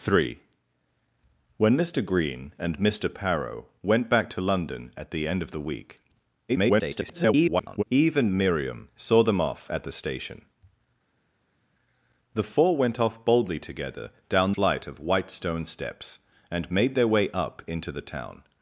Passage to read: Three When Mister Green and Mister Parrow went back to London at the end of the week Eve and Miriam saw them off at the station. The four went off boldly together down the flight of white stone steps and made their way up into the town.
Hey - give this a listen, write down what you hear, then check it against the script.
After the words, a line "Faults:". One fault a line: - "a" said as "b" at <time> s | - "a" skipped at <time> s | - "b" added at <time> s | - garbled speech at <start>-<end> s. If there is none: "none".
Three When Mister Green and Mister Parrow went back to London at the end of the week [garbled] Eve and Miriam saw them off at the station. The four went off boldly together down flight of white stone steps and made their way up into the town.
Faults:
- garbled speech at 6.5-7.8 s
- "the" skipped at 14.5 s